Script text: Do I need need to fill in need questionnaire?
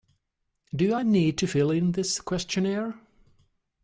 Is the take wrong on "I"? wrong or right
right